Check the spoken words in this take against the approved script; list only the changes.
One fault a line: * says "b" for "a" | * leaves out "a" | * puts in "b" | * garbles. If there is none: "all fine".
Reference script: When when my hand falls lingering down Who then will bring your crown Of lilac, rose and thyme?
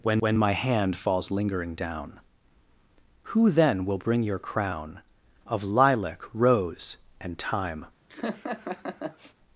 all fine